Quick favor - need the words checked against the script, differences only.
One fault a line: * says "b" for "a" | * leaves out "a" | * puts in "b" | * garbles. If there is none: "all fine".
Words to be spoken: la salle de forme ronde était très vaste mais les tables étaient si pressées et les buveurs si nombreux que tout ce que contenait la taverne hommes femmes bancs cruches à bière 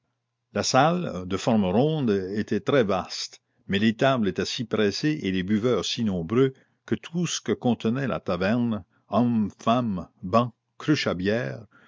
all fine